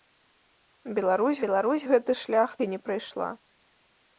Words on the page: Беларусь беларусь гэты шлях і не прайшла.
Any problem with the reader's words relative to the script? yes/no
no